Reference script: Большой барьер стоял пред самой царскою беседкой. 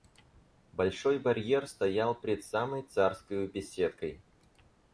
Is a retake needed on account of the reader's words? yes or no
no